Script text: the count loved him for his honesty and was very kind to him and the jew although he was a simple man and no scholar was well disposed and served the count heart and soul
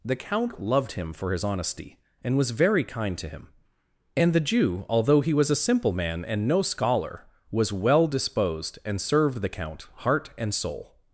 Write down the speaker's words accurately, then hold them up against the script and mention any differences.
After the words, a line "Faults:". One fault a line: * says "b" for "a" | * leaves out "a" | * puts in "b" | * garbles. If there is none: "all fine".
the count loved him for his honesty and was very kind to him and the jew although he was a simple man and no scholar was well disposed and served the count heart and soul
Faults:
all fine